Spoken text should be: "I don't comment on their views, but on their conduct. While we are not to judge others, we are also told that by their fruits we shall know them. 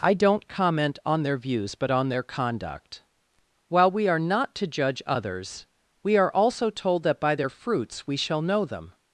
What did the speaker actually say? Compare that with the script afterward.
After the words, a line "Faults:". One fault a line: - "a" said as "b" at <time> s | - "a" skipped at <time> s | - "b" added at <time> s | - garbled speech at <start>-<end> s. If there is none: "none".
"I don't comment on their views, but on their conduct. While we are not to judge others, we are also told that by their fruits we shall know them.
Faults:
none